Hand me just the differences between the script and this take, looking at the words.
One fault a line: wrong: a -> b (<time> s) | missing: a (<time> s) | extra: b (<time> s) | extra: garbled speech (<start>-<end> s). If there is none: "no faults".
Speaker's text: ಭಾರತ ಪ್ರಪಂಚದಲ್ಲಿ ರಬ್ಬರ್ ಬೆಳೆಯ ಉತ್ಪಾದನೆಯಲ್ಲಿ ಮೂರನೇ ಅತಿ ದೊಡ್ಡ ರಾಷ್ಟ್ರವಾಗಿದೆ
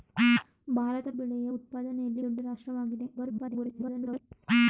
missing: ಪ್ರಪಂಚದಲ್ಲಿ ರಬ್ಬರ್ (1.1 s)
missing: ಮೂರನೇ ಅತಿ (2.2 s)
extra: garbled speech (3.2-4.2 s)